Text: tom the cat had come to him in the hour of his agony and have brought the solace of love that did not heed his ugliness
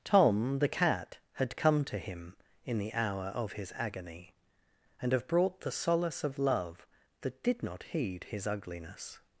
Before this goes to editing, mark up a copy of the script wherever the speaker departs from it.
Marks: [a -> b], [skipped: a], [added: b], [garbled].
tom the cat had come to him in the hour of his agony and have brought the solace of love that did not heed his ugliness